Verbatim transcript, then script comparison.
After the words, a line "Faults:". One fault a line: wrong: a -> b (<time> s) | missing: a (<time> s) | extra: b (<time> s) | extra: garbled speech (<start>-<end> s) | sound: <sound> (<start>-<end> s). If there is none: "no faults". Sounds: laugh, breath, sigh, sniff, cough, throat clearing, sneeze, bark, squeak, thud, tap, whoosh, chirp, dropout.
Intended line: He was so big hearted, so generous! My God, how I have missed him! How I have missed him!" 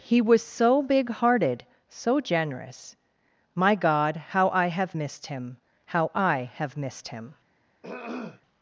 He was so big hearted, so generous! My God, how I have missed him! How I have missed him!"
Faults:
sound: throat clearing (7.8-8.4 s)